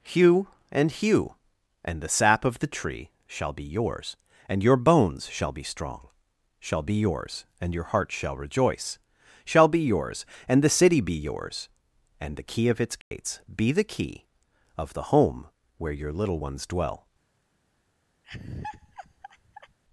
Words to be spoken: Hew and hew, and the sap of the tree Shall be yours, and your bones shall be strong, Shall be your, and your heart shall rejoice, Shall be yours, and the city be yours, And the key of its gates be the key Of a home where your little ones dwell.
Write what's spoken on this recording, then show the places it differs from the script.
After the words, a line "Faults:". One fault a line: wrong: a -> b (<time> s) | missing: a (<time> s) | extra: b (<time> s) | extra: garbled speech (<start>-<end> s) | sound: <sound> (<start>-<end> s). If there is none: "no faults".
Hew and hew, and the sap of the tree Shall be yours, and your bones shall be strong, Shall be yours, and your heart shall rejoice, Shall be yours, and the city be yours, And the key of its gates be the key Of the home where your little ones dwell.
Faults:
wrong: your -> yours (7.0 s)
sound: dropout (13.0-13.1 s)
wrong: a -> the (14.9 s)
sound: laugh (18.2-19.8 s)